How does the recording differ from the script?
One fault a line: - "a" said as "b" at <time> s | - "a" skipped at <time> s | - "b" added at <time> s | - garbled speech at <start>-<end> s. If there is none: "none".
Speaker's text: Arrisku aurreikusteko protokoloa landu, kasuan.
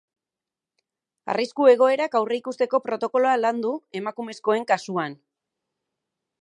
- "egoerak" added at 1.7 s
- "emakumezkoen" added at 4.0 s